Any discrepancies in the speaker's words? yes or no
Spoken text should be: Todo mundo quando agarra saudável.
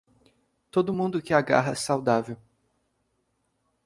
yes